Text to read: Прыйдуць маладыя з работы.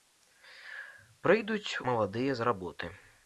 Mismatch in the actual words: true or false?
false